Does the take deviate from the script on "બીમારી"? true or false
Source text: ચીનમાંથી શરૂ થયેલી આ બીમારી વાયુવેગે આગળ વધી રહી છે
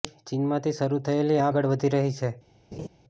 true